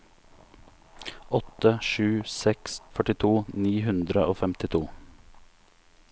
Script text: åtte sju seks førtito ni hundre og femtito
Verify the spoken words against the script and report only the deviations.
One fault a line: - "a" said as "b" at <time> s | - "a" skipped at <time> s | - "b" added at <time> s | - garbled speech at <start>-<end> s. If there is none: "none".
none